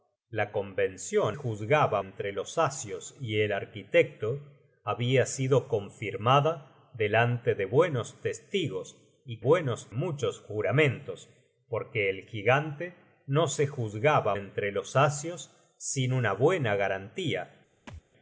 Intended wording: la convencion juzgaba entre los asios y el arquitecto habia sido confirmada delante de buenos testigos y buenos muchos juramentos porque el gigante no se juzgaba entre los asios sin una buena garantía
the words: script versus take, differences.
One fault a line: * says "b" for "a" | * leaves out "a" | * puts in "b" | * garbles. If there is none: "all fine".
all fine